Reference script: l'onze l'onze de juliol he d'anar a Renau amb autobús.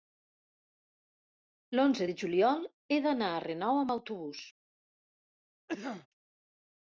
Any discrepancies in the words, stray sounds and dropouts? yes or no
yes